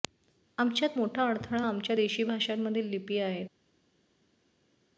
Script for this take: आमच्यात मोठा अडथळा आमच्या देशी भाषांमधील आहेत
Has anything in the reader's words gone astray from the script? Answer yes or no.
yes